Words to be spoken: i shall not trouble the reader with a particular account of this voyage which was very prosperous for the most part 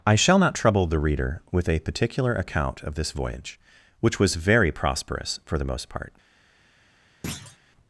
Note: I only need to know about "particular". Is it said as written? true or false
true